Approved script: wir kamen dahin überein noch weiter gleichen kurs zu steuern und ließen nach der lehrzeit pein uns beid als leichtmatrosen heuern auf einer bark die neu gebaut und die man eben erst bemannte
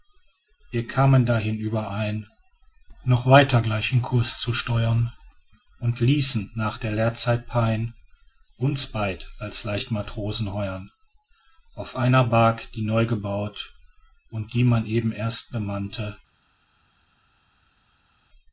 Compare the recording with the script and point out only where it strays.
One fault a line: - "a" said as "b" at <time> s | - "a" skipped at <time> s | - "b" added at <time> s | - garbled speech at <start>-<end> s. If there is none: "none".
none